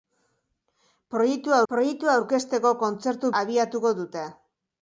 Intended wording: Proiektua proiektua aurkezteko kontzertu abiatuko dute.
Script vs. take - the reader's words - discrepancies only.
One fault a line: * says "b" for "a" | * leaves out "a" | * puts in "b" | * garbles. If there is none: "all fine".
all fine